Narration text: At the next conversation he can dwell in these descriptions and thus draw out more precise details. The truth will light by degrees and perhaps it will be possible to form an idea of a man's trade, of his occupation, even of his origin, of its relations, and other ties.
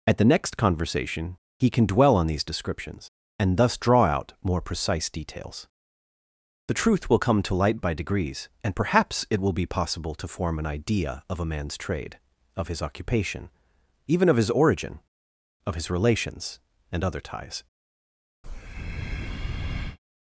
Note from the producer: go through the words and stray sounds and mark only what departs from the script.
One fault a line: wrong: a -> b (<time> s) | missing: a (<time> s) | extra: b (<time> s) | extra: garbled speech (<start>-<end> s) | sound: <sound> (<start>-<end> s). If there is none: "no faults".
wrong: in -> on (2.1 s)
extra: come to (7.2 s)
wrong: its -> his (15.7 s)
sound: breath (18.4-20.0 s)